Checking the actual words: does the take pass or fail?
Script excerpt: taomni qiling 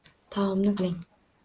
pass